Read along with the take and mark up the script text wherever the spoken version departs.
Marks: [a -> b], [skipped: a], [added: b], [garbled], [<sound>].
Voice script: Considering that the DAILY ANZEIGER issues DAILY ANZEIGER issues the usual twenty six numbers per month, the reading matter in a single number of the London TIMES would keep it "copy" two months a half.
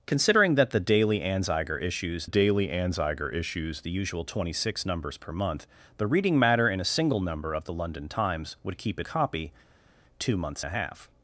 Considering that the DAILY ANZEIGER issues DAILY ANZEIGER issues the usual twenty six numbers per month, the reading matter in a single number of the London TIMES would keep it "copy" two months a half.